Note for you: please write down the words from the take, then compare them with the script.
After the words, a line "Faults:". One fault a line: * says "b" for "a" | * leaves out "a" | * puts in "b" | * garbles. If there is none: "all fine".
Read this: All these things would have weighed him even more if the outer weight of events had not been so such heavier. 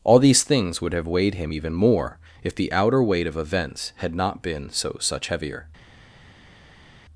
All these things would have weighed him even more if the outer weight of events had not been so such heavier.
Faults:
all fine